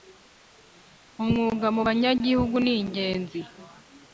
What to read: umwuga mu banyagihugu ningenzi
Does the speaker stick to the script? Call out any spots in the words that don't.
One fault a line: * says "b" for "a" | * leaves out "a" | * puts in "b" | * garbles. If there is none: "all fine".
all fine